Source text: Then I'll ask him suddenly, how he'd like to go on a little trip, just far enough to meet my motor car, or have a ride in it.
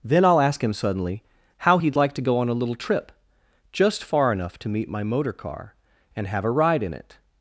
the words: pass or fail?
fail